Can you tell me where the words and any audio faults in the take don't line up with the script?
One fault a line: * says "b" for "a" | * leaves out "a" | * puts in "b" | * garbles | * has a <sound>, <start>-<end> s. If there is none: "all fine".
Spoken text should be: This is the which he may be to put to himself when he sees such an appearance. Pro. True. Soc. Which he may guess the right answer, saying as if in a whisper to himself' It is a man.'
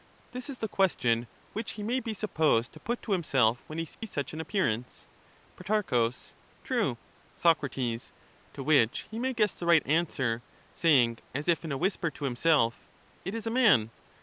* puts in "question"
* puts in "supposed"
* has a dropout, 3.9-4.0 s
* puts in "To"